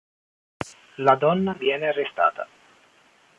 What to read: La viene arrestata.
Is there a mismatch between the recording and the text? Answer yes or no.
yes